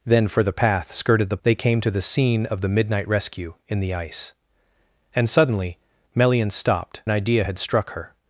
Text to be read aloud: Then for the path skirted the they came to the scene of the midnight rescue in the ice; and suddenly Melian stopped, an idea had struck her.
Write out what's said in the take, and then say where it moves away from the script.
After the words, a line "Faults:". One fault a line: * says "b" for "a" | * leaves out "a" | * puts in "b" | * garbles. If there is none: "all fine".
Then for the path skirted the they came to the scene of the midnight rescue in the ice; and suddenly Melian stopped, an idea had struck her.
Faults:
all fine